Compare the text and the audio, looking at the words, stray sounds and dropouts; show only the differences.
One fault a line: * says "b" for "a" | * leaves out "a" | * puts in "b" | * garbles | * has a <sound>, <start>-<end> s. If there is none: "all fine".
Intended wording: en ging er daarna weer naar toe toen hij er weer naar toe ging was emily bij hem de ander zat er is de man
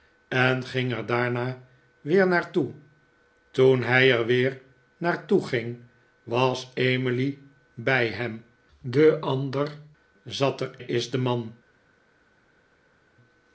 all fine